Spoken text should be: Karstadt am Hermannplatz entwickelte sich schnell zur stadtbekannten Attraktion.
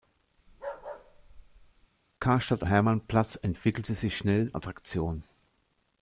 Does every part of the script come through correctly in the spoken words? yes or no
no